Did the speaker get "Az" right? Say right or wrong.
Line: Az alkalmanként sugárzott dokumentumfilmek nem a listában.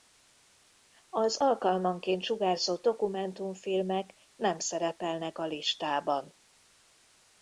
right